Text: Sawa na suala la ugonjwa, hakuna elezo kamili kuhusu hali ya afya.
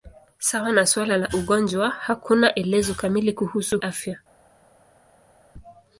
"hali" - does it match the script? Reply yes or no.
no